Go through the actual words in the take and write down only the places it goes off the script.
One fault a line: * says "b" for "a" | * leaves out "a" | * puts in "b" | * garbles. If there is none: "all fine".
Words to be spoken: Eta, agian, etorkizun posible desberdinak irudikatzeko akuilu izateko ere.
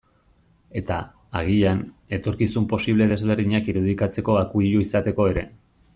all fine